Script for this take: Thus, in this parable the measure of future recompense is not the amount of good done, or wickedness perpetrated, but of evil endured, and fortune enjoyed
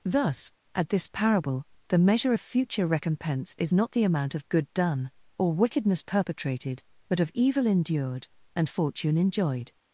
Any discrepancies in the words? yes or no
yes